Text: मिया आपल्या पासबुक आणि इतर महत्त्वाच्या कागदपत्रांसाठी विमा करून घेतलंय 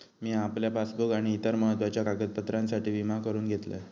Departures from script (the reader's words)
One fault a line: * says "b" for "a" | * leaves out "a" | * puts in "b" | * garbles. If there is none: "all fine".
all fine